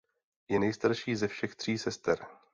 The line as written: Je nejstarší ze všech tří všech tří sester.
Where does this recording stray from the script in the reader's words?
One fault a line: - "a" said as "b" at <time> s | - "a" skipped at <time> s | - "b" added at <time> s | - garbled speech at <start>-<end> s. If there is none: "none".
- "všech tří" skipped at 1.8 s